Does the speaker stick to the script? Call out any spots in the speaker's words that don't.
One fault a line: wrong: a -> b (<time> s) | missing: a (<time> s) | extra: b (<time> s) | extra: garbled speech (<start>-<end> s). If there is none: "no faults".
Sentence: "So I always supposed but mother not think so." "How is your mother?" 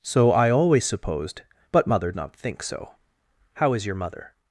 no faults